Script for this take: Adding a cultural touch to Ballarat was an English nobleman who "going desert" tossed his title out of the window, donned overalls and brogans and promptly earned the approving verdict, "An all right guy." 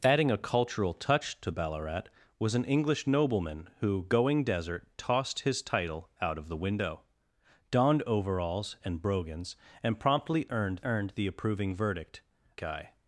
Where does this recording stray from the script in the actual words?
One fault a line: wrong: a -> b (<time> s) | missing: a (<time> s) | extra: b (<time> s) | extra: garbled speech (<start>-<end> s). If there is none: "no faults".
extra: earned (10.8 s)
missing: An all right (12.2 s)